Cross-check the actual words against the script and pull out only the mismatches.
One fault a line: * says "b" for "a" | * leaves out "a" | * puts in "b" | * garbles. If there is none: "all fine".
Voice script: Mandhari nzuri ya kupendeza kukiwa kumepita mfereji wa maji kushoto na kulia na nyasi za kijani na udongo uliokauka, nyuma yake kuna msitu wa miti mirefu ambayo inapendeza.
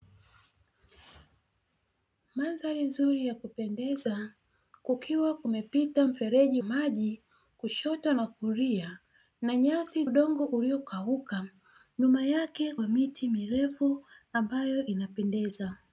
* leaves out "wa"
* leaves out "za kijani na"
* leaves out "kuna msitu"